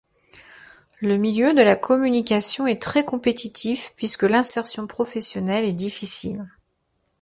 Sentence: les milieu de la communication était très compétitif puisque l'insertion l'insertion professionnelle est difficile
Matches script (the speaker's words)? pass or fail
fail